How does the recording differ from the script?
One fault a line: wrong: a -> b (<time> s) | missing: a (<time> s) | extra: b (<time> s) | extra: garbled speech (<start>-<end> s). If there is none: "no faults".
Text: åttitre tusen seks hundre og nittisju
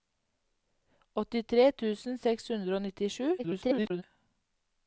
extra: garbled speech (3.4-4.0 s)